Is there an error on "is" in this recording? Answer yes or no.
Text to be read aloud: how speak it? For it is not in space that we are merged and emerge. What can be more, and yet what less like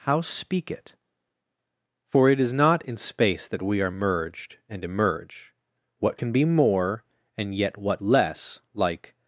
no